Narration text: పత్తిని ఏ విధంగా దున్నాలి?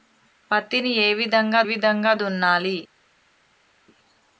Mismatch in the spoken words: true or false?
true